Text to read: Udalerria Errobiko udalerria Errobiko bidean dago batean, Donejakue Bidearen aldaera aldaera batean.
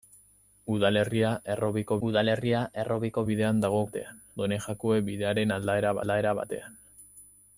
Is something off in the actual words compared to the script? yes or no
no